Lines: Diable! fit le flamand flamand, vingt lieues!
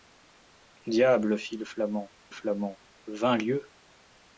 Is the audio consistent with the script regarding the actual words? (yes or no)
yes